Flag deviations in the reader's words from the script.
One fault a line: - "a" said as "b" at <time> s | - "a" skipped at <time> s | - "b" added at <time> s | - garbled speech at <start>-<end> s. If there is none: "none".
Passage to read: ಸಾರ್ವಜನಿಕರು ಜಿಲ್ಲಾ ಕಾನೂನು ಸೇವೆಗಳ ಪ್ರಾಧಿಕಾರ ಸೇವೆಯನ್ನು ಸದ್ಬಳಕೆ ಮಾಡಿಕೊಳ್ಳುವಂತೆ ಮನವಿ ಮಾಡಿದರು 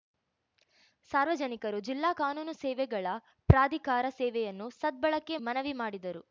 - "ಮಾಡಿಕೊಳ್ಳುವಂತೆ" skipped at 5.4 s